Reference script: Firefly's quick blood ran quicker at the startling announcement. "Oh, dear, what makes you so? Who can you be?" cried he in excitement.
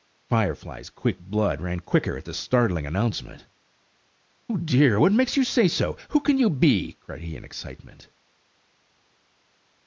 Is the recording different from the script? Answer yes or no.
yes